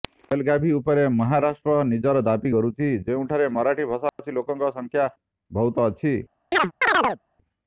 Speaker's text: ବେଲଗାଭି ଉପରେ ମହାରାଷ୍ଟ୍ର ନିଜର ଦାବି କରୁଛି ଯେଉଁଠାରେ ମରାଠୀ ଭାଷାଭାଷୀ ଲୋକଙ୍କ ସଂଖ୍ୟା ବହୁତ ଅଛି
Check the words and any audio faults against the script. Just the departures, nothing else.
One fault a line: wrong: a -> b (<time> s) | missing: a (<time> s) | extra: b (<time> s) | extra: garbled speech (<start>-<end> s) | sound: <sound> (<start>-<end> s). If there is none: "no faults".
sound: dropout (4.1-4.2 s)
sound: chirp (6.5-7.2 s)